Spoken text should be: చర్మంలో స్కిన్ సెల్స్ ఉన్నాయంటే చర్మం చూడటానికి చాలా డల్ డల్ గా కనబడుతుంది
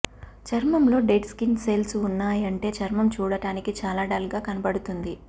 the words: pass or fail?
fail